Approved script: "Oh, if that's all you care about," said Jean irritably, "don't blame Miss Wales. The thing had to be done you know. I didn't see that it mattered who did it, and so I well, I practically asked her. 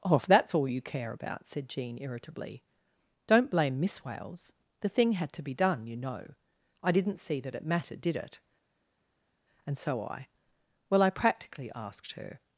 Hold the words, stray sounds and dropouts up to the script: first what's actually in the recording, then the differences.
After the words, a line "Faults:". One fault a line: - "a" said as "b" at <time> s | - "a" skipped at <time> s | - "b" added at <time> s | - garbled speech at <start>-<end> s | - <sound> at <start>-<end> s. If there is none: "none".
"Oh, if that's all you care about," said Jean irritably, "don't blame Miss Wales. The thing had to be done you know. I didn't see that it mattered did it, and so I well, I practically asked her.
Faults:
- "who" skipped at 8.0 s